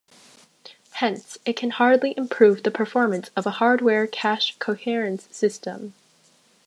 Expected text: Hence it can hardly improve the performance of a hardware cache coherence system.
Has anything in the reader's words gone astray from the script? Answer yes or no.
no